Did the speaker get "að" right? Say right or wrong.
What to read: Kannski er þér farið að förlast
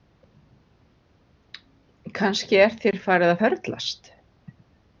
wrong